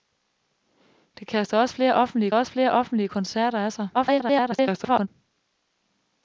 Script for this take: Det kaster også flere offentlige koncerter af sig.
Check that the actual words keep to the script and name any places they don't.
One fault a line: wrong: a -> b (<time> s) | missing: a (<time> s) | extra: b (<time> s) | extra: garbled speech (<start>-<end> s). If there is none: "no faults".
extra: også flere offentlige (2.3 s)
extra: garbled speech (3.9-5.1 s)